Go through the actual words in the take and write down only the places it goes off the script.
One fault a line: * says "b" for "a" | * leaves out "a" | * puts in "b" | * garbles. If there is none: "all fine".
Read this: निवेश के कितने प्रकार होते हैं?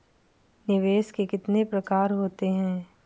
all fine